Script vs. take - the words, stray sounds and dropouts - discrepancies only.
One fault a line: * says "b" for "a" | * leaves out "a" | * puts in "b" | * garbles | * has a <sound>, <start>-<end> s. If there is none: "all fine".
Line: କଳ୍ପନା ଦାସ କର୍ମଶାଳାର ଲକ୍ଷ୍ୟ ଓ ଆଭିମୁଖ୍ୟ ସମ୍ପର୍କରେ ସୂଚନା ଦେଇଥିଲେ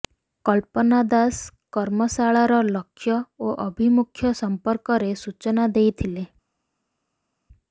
all fine